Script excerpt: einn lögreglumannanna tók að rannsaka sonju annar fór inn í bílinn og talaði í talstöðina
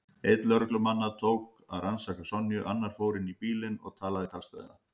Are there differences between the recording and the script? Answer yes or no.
no